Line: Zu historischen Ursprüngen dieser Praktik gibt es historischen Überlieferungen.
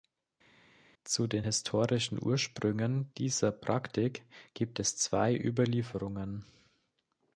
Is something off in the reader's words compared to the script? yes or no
yes